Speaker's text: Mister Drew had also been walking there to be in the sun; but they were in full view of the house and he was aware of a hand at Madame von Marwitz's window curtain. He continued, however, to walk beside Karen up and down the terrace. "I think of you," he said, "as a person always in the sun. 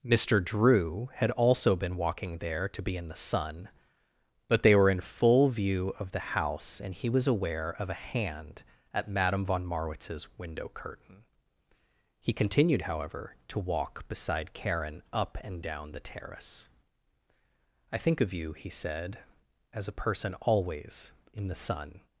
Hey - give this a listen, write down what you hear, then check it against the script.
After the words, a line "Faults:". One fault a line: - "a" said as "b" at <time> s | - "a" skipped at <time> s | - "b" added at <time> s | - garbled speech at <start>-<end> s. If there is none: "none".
Mister Drew had also been walking there to be in the sun; but they were in full view of the house and he was aware of a hand at Madame von Marwitz's window curtain. He continued, however, to walk beside Karen up and down the terrace. "I think of you," he said, "as a person always in the sun.
Faults:
none